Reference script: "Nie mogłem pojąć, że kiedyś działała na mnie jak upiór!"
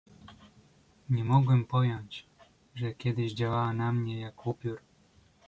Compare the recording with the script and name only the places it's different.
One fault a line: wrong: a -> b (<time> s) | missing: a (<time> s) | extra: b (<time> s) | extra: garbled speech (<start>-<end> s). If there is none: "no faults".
no faults